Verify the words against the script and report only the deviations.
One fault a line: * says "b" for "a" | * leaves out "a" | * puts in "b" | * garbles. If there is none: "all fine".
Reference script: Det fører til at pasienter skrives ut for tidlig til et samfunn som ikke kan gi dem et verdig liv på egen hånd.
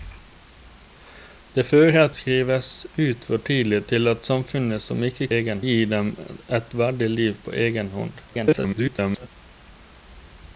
* leaves out "til at pasienter"
* says "egen" for "kan"
* garbles